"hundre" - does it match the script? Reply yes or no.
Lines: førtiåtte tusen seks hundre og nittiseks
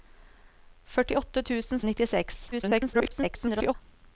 no